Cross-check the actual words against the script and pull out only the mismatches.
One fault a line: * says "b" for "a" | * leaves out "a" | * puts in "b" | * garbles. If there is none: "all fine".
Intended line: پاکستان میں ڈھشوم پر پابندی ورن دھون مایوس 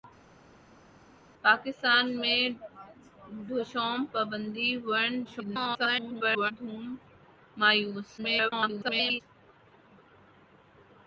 * leaves out "پر"
* garbles
* garbles